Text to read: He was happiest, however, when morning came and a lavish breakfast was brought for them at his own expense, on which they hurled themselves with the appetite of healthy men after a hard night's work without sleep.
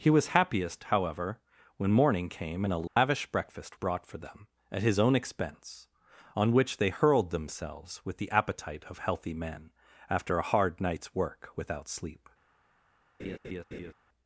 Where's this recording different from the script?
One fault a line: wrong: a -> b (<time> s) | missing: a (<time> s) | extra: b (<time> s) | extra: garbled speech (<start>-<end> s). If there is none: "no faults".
missing: was (3.8 s)